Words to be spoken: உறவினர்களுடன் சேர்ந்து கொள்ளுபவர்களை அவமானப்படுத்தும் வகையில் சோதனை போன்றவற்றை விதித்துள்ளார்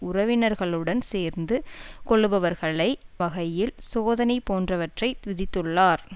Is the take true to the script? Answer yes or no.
no